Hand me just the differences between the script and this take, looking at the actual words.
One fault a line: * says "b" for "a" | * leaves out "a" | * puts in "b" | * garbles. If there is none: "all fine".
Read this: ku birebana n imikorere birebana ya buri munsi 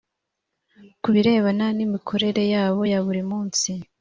* says "yabo" for "birebana"